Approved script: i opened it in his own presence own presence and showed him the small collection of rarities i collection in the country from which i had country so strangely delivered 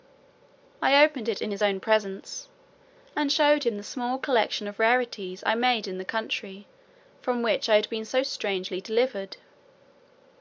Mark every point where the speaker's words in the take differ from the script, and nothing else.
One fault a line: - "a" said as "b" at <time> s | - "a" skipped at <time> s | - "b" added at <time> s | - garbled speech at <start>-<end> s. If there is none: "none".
- "own presence" skipped at 2.5 s
- "collection" said as "made" at 5.6 s
- "country" said as "been" at 7.9 s